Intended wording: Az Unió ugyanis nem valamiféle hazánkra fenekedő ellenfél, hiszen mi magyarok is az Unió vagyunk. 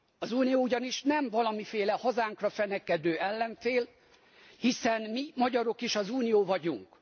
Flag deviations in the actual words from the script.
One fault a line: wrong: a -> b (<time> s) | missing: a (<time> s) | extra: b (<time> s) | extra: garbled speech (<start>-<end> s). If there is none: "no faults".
no faults